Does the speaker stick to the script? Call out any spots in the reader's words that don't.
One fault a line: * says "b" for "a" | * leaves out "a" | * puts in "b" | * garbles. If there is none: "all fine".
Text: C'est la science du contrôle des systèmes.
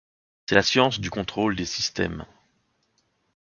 all fine